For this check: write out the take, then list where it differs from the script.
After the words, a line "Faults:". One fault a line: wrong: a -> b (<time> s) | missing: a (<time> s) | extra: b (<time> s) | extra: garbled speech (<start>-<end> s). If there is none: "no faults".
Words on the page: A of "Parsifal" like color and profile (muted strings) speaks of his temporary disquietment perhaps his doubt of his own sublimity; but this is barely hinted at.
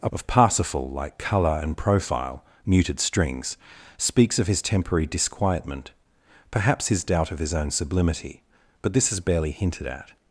A of "Parsifal" like color and profile (muted strings) speaks of his temporary disquietment perhaps his doubt of his own sublimity; but this is barely hinted at.
Faults:
no faults